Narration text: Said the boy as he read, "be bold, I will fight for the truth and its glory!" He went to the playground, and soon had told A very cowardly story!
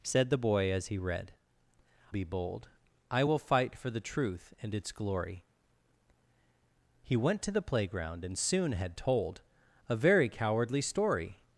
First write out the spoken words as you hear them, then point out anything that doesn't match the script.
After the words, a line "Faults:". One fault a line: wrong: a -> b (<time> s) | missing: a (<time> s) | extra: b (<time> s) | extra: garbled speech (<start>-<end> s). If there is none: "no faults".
Said the boy as he read, "be bold, I will fight for the truth and its glory!" He went to the playground, and soon had told A very cowardly story!
Faults:
no faults